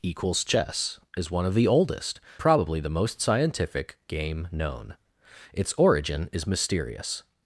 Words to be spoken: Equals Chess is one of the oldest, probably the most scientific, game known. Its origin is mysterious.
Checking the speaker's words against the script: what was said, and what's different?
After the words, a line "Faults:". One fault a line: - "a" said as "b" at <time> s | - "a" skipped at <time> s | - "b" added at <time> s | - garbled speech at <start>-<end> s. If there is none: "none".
Equals Chess is one of the oldest, probably the most scientific, game known. Its origin is mysterious.
Faults:
none